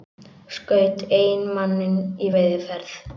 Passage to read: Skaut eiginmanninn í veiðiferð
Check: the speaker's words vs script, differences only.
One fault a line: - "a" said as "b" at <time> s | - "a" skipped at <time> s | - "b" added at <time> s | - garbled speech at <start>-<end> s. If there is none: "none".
none